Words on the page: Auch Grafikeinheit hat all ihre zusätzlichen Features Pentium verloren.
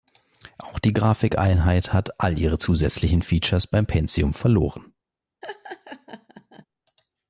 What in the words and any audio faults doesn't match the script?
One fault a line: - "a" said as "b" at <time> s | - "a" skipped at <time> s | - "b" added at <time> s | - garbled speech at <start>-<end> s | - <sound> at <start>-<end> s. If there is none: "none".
- "die" added at 0.8 s
- "beim" added at 3.6 s
- laugh at 5.4-6.7 s